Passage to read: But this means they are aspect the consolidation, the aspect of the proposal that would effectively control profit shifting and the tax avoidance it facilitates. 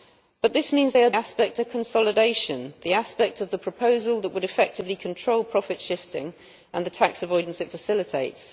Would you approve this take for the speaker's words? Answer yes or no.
yes